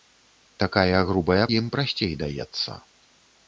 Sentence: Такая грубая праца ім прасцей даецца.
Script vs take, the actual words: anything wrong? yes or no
yes